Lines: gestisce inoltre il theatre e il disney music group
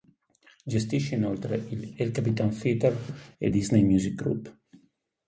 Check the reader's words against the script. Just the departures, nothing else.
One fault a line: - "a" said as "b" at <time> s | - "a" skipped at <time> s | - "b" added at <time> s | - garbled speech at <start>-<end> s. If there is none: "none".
- "el capitan" added at 1.9 s